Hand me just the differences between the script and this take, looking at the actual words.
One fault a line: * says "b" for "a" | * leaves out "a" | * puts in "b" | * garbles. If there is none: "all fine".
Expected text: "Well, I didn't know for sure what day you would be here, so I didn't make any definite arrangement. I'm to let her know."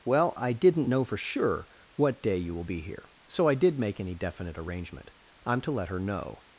* says "will" for "would"
* says "did" for "didn't"